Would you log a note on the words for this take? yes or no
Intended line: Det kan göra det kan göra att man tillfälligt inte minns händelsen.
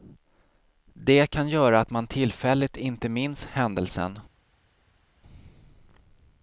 yes